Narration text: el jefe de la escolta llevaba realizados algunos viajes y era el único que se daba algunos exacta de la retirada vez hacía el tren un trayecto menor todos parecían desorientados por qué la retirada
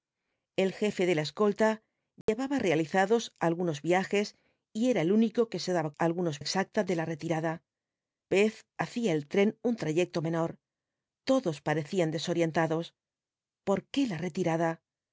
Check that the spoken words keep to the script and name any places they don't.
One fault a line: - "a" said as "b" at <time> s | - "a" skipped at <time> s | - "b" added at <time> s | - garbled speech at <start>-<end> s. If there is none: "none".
none